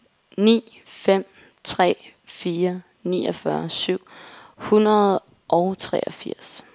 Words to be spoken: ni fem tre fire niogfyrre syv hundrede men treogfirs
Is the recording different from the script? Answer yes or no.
yes